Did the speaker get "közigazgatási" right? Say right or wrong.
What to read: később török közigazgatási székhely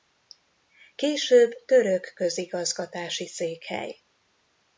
right